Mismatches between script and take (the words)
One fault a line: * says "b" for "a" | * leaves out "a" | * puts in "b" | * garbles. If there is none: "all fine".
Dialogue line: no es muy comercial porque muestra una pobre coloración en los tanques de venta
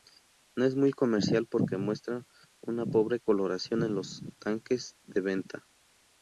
all fine